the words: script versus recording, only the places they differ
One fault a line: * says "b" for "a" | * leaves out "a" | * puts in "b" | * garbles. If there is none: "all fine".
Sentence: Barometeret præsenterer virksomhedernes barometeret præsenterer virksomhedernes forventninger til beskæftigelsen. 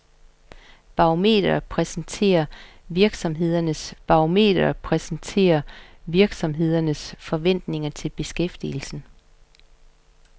all fine